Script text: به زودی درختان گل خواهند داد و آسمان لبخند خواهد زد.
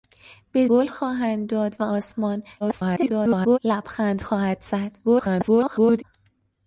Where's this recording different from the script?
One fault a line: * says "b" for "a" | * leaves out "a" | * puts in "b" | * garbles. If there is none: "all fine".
* leaves out "زودی درختان"
* garbles
* garbles